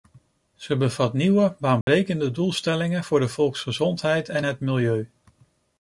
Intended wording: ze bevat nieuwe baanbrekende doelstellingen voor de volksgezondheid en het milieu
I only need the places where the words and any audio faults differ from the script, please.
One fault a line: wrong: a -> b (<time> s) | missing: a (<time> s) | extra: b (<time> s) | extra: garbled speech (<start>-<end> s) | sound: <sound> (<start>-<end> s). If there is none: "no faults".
sound: dropout (1.8-1.9 s)